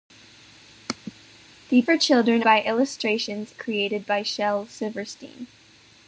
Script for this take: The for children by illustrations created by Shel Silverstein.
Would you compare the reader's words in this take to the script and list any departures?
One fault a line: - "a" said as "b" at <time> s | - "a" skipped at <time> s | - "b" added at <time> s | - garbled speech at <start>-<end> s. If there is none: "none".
none